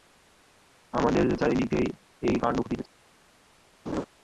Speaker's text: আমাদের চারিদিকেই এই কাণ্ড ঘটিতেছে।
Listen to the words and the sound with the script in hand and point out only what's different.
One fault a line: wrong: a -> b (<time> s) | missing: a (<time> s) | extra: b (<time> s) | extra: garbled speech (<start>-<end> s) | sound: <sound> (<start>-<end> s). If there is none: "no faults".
sound: laugh (3.9-4.1 s)